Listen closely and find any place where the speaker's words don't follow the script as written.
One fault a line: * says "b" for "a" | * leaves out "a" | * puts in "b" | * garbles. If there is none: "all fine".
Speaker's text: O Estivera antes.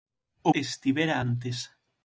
all fine